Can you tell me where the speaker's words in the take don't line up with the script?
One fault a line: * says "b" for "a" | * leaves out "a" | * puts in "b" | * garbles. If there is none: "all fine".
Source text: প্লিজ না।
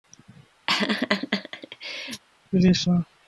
all fine